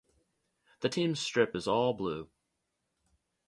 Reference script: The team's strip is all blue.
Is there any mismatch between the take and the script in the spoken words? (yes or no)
no